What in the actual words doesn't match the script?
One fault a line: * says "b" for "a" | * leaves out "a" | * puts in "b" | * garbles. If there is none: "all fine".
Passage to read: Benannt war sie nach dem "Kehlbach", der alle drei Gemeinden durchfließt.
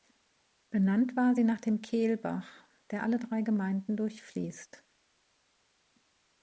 all fine